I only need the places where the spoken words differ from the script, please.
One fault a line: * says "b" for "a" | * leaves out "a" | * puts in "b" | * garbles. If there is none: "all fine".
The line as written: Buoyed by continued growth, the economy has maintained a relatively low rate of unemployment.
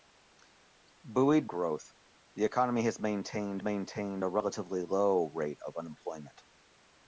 * leaves out "by continued"
* puts in "maintained"